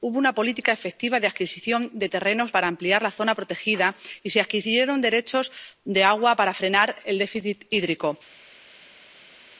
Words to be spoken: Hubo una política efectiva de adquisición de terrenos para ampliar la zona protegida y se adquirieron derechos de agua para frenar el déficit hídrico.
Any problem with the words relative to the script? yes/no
no